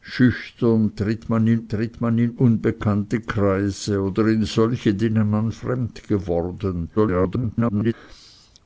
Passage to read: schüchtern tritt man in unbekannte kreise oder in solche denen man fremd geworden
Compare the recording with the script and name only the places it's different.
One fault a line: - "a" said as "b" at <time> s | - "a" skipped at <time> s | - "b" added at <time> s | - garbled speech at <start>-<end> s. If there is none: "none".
- "tritt man in" added at 1.7 s
- garbled speech at 7.0-7.9 s